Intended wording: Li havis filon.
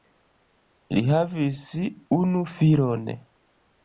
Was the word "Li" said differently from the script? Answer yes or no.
no